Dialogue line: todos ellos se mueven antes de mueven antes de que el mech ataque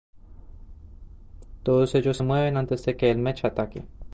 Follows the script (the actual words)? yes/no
no